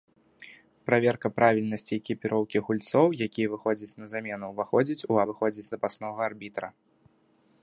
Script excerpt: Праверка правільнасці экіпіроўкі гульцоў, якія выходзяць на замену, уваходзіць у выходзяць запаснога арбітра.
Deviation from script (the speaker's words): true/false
false